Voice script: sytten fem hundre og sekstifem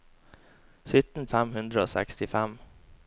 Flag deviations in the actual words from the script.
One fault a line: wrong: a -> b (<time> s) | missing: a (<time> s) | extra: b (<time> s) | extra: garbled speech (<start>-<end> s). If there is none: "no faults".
no faults